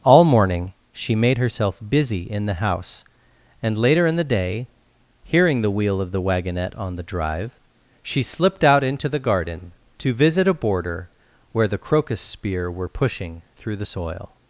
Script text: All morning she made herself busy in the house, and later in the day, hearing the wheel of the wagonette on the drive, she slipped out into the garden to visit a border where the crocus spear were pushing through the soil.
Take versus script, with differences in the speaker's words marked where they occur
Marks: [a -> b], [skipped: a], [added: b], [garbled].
All morning she made herself busy in the house, and later in the day, hearing the wheel of the wagonette on the drive, she slipped out into the garden to visit a border where the crocus spear were pushing through the soil.